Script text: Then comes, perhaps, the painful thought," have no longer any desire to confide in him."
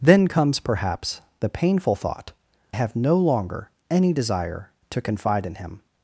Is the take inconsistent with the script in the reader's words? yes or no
no